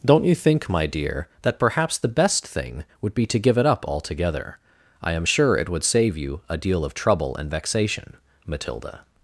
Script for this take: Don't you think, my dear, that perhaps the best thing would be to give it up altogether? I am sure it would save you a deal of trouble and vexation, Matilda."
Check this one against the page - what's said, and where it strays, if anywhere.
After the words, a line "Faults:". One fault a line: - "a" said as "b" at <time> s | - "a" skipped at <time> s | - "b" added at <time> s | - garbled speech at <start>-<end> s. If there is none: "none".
Don't you think, my dear, that perhaps the best thing would be to give it up altogether? I am sure it would save you a deal of trouble and vexation, Matilda."
Faults:
none